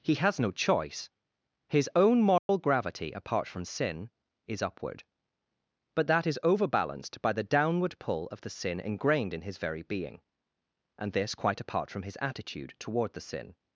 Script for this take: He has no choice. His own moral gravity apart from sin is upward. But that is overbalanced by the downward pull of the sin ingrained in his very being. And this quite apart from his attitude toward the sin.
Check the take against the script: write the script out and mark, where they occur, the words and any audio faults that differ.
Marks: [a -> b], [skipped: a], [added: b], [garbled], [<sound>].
He has no choice. His own moral [dropout] gravity apart from sin is upward. But that is overbalanced by the downward pull of the sin ingrained in his very being. And this quite apart from his attitude toward the sin.